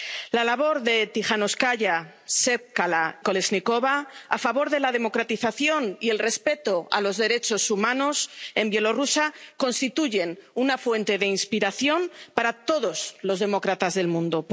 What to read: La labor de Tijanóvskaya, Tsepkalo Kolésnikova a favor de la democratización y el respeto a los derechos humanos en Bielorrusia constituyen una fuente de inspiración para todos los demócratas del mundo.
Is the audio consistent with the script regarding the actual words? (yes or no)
yes